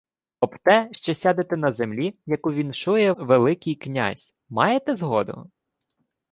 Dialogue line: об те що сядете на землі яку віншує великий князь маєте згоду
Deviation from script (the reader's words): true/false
false